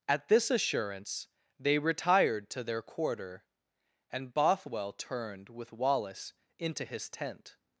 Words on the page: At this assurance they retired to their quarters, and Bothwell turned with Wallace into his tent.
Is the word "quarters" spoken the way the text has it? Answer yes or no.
no